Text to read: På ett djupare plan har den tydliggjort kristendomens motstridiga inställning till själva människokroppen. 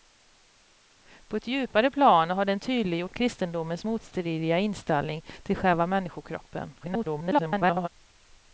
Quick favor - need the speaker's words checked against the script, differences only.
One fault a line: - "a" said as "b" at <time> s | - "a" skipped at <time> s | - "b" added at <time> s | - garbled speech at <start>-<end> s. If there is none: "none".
- garbled speech at 6.8-7.9 s